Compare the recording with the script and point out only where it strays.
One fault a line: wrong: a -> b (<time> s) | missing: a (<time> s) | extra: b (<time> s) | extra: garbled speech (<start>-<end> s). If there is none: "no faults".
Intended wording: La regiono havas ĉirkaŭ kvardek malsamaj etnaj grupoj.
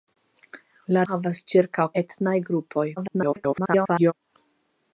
missing: regiono (1.0 s)
missing: kvardek malsamaj (1.9 s)
extra: garbled speech (3.0-4.1 s)